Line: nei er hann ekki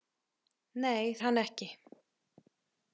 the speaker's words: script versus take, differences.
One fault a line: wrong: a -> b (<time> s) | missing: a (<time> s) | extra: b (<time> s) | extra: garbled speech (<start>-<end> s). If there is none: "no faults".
no faults